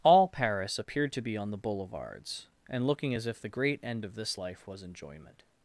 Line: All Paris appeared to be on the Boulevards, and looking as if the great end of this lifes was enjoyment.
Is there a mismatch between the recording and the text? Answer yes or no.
yes